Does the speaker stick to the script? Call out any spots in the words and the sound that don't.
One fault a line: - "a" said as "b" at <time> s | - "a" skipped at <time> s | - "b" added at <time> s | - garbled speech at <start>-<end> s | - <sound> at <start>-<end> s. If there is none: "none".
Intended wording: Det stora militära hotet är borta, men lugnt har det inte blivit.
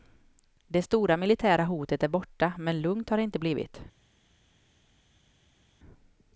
none